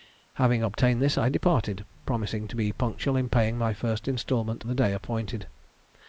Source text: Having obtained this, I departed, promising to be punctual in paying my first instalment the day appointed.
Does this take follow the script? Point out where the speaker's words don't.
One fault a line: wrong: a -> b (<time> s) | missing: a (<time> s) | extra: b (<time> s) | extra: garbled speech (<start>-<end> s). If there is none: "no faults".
no faults